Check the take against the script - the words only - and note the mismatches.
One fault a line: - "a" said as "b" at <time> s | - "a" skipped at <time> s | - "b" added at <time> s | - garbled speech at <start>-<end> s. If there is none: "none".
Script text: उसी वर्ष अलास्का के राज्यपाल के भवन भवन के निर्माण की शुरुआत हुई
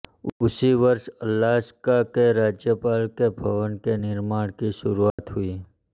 - "भवन" skipped at 3.8 s